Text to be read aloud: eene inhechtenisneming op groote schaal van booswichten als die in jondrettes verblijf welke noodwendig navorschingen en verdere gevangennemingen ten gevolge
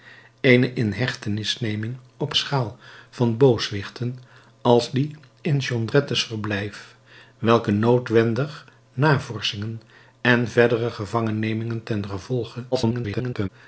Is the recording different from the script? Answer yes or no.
yes